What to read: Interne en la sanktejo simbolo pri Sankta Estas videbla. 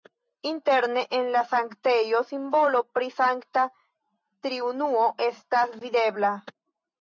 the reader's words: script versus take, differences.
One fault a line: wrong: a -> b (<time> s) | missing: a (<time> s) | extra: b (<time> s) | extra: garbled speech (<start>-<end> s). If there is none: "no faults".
extra: Triunuo (4.5 s)